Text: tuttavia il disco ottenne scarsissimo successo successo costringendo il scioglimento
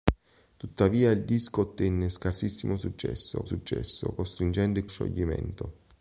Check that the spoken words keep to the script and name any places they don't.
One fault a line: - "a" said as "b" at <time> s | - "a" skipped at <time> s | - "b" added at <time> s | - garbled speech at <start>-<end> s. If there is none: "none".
none